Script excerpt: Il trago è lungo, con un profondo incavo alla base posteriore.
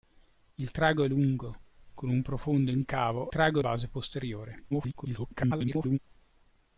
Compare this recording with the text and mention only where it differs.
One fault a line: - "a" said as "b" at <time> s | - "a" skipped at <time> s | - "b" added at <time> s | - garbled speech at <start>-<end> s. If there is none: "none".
- "alla" said as "trago" at 3.3 s
- garbled speech at 4.7-6.0 s